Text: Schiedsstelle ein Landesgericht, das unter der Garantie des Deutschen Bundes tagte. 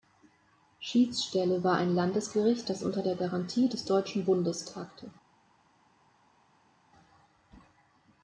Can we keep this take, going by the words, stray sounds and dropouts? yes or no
no